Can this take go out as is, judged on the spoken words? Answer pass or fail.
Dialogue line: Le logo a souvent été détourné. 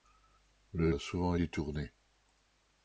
fail